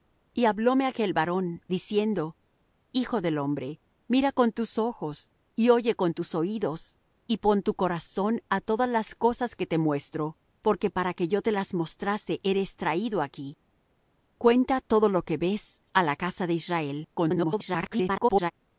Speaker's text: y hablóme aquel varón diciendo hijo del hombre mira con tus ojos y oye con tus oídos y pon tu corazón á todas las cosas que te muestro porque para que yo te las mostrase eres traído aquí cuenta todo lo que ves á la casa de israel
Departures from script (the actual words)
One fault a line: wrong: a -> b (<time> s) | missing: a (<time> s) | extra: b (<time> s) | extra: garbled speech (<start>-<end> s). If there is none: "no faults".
extra: garbled speech (17.1-18.5 s)